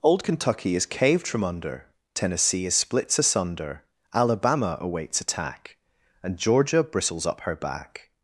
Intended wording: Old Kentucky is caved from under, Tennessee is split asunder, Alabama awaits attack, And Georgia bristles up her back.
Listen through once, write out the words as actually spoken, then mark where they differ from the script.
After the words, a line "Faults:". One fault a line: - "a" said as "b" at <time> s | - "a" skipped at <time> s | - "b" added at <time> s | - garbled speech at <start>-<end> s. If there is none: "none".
Old Kentucky is caved from under, Tennessee is splits asunder, Alabama awaits attack, And Georgia bristles up her back.
Faults:
- "split" said as "splits" at 2.7 s